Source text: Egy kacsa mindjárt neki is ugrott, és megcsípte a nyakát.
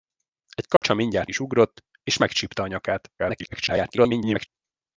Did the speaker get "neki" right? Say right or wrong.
wrong